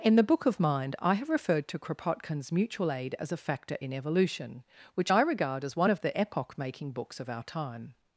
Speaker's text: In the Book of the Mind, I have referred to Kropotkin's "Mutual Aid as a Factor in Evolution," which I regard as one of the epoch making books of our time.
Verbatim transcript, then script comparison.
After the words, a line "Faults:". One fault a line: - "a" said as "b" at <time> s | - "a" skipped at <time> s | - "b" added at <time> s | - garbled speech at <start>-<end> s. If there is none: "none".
In the Book of Mind, I have referred to Kropotkin's "Mutual Aid as a Factor in Evolution," which I regard as one of the epoch making books of our time.
Faults:
- "the" skipped at 0.6 s